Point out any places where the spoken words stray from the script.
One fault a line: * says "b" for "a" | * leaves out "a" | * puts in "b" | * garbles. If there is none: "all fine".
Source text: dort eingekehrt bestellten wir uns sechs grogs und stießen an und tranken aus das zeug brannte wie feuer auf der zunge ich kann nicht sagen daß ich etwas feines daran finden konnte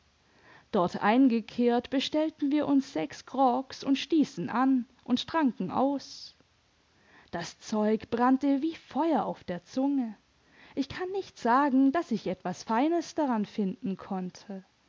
all fine